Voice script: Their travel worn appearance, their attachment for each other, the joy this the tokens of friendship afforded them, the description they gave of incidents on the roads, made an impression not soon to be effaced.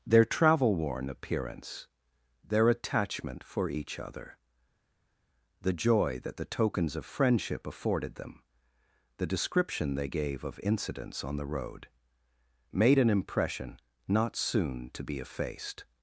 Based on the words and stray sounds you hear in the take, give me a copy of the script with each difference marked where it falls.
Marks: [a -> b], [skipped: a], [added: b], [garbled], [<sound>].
Their travel worn appearance, their attachment for each other, the joy [this -> that] the tokens of friendship afforded them, the description they gave of incidents on the [roads, -> road] made an impression not soon to be effaced.